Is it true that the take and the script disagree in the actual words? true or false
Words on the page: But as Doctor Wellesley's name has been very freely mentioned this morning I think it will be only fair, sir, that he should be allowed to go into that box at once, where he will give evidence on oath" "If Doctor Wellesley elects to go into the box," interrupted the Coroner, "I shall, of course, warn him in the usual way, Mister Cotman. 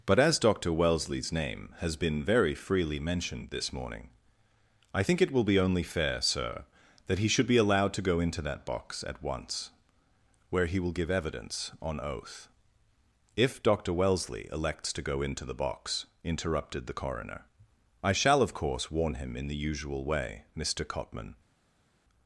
false